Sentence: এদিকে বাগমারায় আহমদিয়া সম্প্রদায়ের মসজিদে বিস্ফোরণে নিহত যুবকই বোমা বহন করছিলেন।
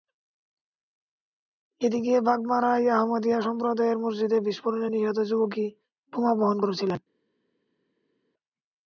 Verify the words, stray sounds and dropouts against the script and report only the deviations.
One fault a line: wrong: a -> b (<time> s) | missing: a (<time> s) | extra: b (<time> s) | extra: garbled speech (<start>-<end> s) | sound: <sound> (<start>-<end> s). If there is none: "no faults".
no faults